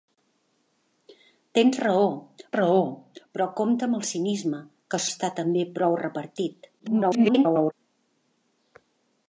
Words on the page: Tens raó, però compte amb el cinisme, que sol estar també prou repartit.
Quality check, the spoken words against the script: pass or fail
fail